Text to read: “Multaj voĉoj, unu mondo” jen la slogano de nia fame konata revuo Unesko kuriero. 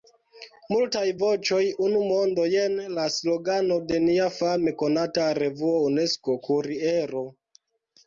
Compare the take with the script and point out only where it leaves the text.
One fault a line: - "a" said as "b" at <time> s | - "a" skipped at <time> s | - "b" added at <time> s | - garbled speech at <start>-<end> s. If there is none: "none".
none